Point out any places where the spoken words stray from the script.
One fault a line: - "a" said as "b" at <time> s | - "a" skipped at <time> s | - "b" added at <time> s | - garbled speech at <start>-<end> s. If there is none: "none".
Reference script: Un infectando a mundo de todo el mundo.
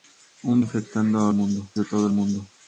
none